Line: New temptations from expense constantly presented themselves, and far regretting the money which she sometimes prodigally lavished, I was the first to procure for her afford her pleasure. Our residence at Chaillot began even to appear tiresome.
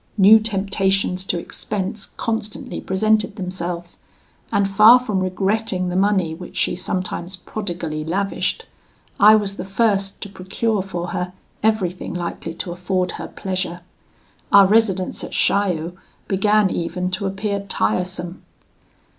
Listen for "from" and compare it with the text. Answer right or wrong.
wrong